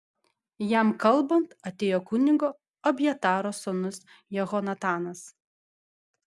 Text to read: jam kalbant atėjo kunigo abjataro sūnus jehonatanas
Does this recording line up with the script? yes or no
yes